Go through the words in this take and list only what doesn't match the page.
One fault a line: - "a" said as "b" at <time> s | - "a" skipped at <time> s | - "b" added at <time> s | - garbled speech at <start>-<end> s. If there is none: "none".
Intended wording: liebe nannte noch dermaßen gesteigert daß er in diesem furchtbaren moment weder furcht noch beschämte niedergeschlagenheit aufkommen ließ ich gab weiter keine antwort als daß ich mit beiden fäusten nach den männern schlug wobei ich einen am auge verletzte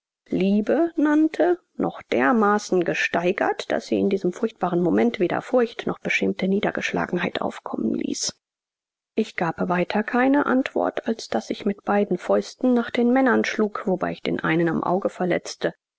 - "er" said as "sie" at 3.9 s
- "den" added at 14.2 s